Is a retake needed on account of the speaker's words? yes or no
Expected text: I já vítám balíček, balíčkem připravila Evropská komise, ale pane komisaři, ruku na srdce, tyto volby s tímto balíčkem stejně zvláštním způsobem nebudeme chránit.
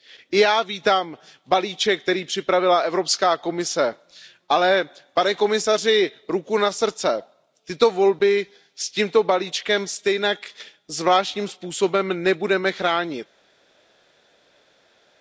yes